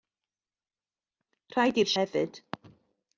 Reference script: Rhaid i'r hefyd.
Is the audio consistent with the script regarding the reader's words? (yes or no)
yes